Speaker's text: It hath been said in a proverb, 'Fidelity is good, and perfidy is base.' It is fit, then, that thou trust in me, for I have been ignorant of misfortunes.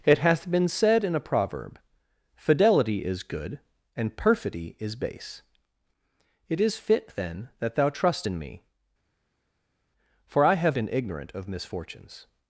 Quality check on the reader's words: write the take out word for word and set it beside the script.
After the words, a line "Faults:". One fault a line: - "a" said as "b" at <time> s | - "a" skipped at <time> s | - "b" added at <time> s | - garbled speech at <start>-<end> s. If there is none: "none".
It hath been said in a proverb, 'Fidelity is good, and perfidy is base.' It is fit, then, that thou trust in me, for I have been ignorant of misfortunes.
Faults:
none